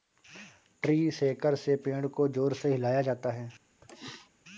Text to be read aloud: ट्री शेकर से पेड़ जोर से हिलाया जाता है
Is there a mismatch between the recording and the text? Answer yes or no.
yes